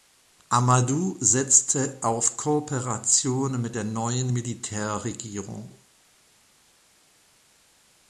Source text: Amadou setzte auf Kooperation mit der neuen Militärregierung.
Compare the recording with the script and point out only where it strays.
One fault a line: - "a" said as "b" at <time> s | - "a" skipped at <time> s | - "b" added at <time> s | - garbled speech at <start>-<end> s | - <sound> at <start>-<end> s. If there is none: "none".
none